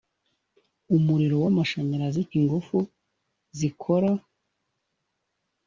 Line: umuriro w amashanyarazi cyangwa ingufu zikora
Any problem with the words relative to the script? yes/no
yes